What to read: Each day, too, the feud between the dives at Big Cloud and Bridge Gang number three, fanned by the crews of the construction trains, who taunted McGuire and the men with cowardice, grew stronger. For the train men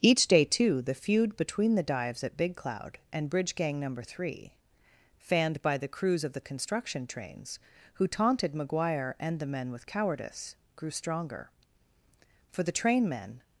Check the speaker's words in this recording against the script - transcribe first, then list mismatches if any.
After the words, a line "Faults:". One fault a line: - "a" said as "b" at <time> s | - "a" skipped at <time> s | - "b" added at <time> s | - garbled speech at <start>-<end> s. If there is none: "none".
Each day, too, the feud between the dives at Big Cloud and Bridge Gang number three, fanned by the crews of the construction trains, who taunted McGuire and the men with cowardice, grew stronger. For the train men
Faults:
none